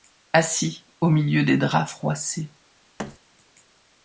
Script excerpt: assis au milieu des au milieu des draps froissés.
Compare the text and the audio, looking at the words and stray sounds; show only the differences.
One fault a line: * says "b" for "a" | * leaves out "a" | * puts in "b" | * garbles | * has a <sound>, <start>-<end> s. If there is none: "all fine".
* leaves out "au milieu des"
* has a thud, 3.0-3.2 s